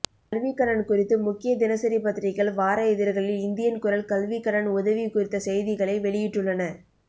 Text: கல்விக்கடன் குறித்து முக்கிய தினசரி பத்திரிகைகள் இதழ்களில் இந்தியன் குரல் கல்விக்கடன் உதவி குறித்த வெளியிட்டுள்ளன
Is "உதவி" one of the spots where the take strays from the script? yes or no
no